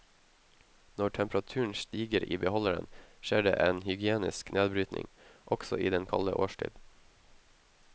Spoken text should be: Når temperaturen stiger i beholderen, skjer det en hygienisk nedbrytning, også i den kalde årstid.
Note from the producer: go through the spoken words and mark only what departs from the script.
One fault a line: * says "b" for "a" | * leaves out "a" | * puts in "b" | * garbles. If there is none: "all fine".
all fine